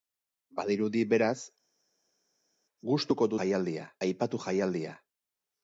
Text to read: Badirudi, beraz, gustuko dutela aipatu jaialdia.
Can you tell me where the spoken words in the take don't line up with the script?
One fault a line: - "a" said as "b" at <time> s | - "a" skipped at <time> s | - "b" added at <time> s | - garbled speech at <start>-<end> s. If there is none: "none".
- "dutela" said as "jaialdia" at 3.4 s